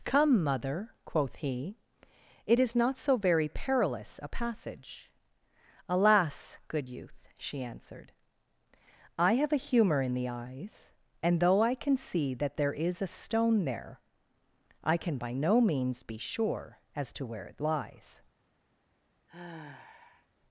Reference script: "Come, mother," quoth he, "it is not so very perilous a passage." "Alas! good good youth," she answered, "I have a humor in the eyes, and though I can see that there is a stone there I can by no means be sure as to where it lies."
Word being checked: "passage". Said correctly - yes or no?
yes